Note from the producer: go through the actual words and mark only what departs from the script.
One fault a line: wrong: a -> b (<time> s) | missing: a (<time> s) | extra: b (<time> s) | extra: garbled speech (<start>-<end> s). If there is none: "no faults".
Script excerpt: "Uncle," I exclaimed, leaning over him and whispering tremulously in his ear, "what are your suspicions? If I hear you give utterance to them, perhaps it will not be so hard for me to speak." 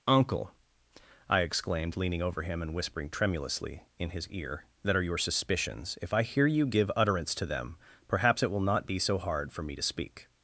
wrong: what -> that (4.8 s)